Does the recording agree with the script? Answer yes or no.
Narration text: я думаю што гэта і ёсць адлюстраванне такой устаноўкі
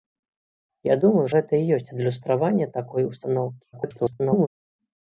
no